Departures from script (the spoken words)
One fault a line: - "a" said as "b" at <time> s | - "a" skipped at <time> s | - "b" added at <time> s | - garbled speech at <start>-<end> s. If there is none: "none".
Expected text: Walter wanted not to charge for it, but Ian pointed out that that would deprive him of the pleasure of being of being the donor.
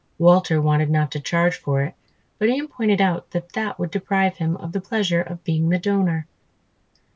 - "of being" skipped at 5.7 s